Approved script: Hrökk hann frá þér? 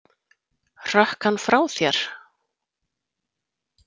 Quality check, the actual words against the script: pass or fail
pass